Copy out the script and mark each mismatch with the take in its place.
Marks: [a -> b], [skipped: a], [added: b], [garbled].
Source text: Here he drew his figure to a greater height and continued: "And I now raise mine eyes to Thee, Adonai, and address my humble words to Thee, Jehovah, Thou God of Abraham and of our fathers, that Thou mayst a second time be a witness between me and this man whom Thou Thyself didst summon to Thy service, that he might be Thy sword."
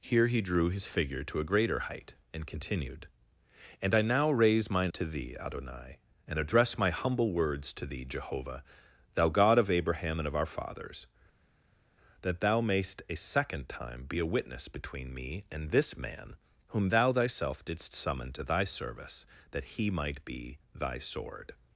Here he drew his figure to a greater height and continued: "And I now raise mine [skipped: eyes] to Thee, Adonai, and address my humble words to Thee, Jehovah, Thou God of Abraham and of our fathers, that Thou mayst a second time be a witness between me and this man whom Thou Thyself didst summon to Thy service, that he might be Thy sword."